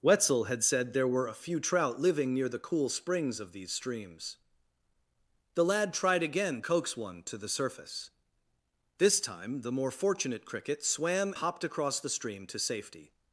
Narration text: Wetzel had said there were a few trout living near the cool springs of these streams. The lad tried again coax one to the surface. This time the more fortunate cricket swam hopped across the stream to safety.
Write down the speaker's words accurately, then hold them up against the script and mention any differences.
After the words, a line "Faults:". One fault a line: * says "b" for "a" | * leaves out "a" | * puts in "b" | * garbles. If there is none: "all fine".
Wetzel had said there were a few trout living near the cool springs of these streams. The lad tried again coax one to the surface. This time the more fortunate cricket swam hopped across the stream to safety.
Faults:
all fine